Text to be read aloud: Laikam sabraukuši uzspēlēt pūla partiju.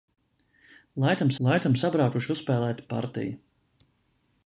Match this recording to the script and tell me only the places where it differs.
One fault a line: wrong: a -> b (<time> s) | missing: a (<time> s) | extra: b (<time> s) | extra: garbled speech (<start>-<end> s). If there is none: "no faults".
extra: laikam (1.5 s)
missing: pūla (2.8 s)